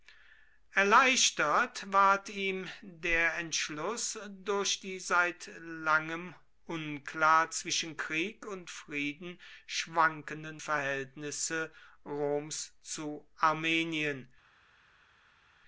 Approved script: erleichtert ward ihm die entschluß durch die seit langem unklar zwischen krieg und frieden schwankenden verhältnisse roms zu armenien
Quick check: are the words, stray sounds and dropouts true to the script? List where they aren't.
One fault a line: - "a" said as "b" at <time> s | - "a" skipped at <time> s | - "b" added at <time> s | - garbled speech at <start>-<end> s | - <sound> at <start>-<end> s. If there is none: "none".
- "die" said as "der" at 2.8 s